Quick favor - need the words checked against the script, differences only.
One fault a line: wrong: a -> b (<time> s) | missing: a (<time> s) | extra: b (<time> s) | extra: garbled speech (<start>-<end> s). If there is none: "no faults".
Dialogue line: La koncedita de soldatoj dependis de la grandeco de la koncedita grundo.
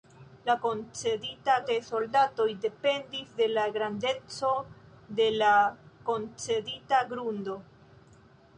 no faults